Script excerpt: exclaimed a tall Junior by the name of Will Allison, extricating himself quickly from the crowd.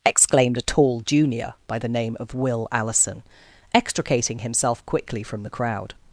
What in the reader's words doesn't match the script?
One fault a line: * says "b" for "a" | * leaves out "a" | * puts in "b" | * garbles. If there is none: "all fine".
all fine